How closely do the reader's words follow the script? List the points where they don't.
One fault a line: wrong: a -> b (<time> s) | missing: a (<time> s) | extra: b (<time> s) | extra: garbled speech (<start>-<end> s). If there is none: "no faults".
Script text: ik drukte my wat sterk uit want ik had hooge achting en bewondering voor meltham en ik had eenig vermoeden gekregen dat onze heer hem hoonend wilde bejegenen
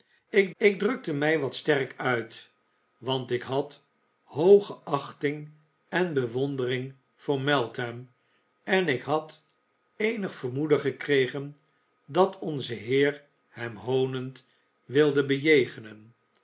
extra: ik (0.6 s)